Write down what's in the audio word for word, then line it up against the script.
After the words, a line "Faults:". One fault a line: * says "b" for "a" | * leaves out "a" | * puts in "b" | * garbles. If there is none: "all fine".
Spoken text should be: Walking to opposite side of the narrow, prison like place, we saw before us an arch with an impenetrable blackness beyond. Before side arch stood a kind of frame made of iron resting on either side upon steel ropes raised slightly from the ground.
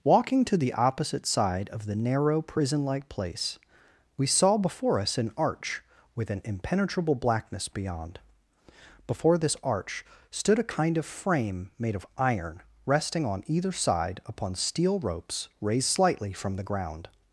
Walking to the opposite side of the narrow, prison like place, we saw before us an arch with an impenetrable blackness beyond. Before this arch stood a kind of frame made of iron resting on either side upon steel ropes raised slightly from the ground.
Faults:
* puts in "the"
* says "this" for "side"